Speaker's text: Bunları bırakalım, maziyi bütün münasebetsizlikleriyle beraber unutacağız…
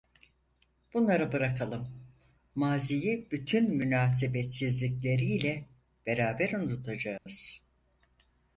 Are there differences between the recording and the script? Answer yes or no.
no